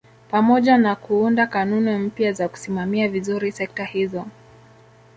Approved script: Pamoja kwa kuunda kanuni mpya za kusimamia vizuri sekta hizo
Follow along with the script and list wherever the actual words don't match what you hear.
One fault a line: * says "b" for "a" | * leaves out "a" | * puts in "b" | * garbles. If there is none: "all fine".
* says "na" for "kwa"